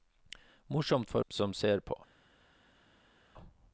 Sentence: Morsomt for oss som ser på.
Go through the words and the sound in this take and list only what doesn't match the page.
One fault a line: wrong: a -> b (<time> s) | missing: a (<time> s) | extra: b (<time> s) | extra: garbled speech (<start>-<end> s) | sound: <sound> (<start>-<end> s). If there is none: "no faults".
missing: oss (1.2 s)